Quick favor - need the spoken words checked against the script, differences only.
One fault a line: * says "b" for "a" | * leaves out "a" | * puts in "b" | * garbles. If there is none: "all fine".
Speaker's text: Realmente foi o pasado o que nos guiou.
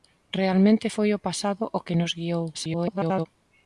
* garbles